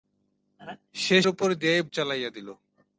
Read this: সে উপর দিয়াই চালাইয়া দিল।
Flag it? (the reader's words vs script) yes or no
no